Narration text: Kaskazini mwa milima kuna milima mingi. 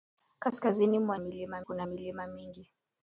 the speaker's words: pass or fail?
pass